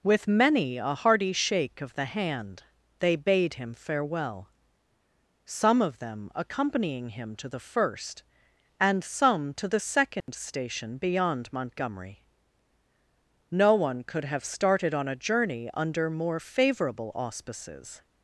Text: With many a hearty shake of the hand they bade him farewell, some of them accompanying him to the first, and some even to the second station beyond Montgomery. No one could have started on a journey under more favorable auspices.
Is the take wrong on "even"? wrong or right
wrong